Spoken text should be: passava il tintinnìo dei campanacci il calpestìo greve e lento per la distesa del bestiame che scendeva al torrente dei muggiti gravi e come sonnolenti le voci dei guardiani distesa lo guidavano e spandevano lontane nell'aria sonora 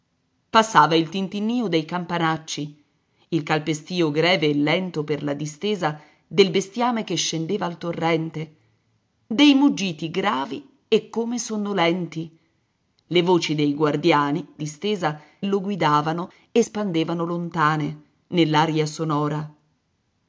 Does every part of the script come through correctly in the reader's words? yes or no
yes